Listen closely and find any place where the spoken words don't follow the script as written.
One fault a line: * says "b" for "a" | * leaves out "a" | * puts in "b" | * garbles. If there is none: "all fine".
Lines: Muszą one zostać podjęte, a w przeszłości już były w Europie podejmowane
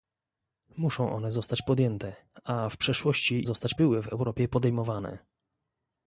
* says "zostać" for "już"